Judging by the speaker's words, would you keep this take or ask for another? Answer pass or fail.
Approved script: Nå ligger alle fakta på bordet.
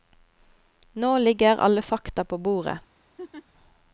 pass